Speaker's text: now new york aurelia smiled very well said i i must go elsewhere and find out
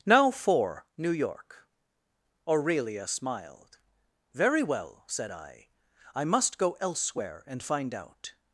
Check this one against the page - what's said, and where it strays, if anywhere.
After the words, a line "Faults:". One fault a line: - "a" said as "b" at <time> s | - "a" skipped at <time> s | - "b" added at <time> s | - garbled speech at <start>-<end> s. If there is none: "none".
now for new york aurelia smiled very well said i i must go elsewhere and find out
Faults:
- "for" added at 0.3 s